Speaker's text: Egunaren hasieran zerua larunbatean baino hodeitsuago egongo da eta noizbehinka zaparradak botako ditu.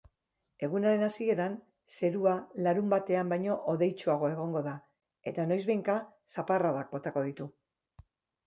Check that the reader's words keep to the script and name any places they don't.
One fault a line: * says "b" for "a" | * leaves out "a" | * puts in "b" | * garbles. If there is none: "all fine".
all fine